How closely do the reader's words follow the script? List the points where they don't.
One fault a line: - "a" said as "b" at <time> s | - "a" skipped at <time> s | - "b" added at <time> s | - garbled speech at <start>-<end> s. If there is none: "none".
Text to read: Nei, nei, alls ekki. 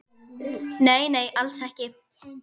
none